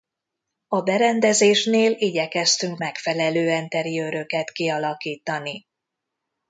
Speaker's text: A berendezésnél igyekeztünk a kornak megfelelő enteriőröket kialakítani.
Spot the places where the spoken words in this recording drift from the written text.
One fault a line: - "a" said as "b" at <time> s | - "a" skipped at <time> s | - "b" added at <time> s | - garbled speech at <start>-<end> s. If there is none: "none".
- "a kornak" skipped at 2.8 s